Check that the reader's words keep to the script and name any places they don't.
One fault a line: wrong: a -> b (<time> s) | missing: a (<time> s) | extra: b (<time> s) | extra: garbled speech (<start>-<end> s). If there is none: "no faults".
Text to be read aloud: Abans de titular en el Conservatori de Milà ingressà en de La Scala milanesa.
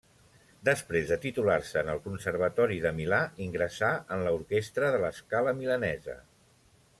wrong: Abans -> Després (0.7 s)
extra: se (1.7 s)
extra: l'orquestra (4.3 s)